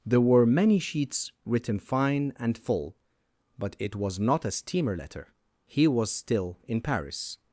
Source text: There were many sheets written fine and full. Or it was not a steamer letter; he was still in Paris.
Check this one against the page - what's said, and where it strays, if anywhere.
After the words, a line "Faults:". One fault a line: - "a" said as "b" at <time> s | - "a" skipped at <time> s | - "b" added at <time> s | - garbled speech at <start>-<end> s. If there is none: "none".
There were many sheets written fine and full. But it was not a steamer letter; he was still in Paris.
Faults:
- "Or" said as "But" at 3.6 s